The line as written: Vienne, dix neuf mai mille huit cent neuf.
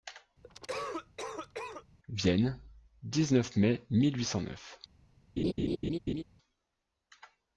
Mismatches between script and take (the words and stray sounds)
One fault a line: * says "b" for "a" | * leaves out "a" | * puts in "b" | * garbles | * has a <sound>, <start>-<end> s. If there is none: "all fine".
* has a cough, 0.4-1.8 s
* has a laugh, 5.4-6.2 s